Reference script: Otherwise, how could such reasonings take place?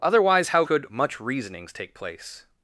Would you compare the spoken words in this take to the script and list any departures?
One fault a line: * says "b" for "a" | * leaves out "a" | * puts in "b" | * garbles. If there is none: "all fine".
* says "much" for "such"